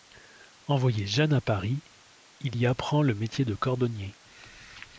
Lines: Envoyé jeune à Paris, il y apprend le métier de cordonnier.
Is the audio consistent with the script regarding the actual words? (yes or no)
yes